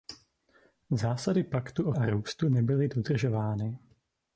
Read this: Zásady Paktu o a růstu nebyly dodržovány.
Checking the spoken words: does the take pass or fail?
pass